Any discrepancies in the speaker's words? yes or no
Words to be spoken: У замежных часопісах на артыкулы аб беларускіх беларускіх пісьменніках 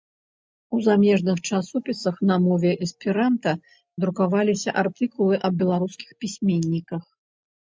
yes